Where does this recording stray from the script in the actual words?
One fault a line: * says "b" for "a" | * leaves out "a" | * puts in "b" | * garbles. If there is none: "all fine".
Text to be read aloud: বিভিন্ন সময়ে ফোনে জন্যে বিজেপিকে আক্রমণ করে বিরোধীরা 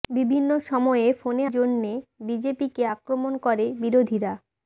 all fine